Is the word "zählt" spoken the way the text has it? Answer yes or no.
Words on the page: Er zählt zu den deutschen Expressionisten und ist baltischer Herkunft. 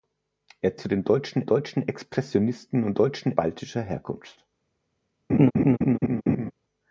no